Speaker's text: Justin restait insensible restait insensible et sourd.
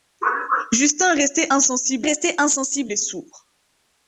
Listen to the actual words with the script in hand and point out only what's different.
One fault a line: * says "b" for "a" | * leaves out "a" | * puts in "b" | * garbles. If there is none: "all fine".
all fine